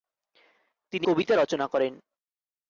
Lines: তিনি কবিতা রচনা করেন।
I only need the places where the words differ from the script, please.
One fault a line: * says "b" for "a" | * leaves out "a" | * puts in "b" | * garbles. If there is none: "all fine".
all fine